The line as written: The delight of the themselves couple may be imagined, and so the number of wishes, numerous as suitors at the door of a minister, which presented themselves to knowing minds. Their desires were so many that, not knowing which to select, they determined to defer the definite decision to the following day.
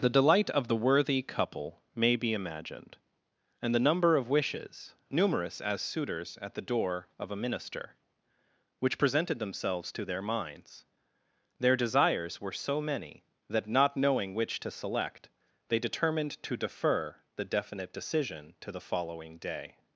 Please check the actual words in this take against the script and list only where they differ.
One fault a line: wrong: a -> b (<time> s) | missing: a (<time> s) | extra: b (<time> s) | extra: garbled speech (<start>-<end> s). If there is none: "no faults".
wrong: themselves -> worthy (0.8 s)
missing: so (3.8 s)
wrong: knowing -> their (10.1 s)